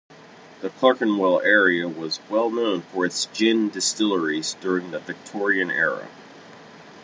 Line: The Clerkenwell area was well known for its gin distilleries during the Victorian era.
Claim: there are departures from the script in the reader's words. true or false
false